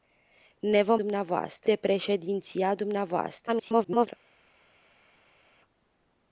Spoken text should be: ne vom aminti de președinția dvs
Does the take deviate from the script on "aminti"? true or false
true